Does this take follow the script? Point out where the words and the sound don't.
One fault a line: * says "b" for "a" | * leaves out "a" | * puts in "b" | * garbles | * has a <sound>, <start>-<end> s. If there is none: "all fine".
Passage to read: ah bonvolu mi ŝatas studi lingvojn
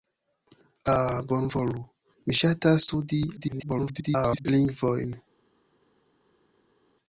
* garbles